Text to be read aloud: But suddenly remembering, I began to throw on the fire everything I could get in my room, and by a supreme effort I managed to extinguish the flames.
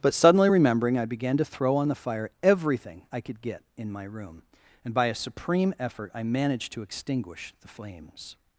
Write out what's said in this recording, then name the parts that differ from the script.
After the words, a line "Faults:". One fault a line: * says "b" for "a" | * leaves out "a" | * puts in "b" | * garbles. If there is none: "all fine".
But suddenly remembering, I began to throw on the fire everything I could get in my room, and by a supreme effort I managed to extinguish the flames.
Faults:
all fine